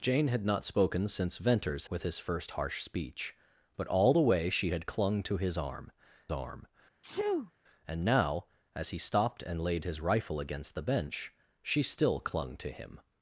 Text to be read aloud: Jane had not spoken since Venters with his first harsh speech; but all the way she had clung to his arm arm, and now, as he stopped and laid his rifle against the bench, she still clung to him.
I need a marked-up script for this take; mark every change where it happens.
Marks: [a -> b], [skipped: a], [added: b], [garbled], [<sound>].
Jane had not spoken since Venters with his first harsh speech; but all the way she had clung to his arm arm, [sneeze] and now, as he stopped and laid his rifle against the bench, she still clung to him.